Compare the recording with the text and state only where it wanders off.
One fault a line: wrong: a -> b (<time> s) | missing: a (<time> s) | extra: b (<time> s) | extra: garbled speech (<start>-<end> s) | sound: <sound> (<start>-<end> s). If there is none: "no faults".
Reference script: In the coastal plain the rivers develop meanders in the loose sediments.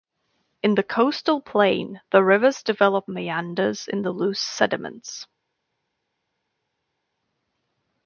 no faults